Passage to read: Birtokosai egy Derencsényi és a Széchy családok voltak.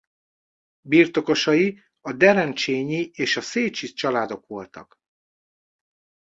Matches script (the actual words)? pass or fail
fail